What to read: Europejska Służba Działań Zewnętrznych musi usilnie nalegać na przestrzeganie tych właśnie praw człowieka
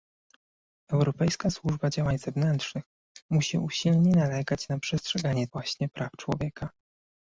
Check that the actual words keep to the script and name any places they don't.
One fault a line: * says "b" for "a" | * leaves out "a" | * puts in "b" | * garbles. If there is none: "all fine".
* leaves out "tych"